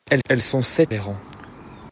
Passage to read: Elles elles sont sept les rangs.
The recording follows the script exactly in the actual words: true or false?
true